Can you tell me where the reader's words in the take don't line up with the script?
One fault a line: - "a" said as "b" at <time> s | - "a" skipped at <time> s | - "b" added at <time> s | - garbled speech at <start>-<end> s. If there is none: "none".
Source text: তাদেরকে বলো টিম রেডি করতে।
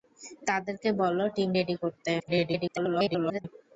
- garbled speech at 2.2-3.4 s